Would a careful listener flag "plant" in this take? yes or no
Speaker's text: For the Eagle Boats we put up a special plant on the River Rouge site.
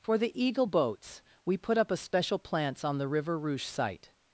yes